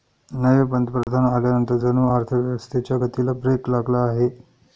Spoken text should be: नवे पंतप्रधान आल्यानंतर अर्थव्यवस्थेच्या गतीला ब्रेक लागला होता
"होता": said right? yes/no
no